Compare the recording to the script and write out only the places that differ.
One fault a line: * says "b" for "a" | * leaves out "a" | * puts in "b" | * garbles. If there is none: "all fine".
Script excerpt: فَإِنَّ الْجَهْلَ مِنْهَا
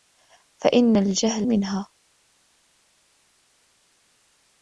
all fine